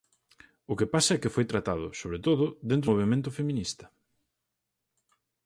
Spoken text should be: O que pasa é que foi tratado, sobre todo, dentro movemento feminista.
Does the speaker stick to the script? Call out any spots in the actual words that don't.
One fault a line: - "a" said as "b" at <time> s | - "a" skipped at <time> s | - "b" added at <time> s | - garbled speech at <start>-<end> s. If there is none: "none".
none